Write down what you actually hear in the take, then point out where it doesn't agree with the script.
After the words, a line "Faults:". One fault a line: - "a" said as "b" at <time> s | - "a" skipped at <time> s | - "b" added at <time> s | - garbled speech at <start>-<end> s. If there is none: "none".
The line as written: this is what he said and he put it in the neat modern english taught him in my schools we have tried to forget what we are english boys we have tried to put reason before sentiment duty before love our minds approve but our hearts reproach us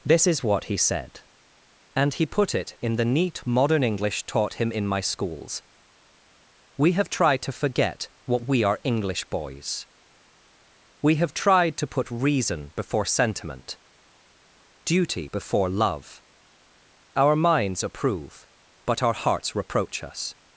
this is what he said and he put it in the neat modern english taught him in my schools we have tried to forget what we are english boys we have tried to put reason before sentiment duty before love our minds approve but our hearts reproach us
Faults:
none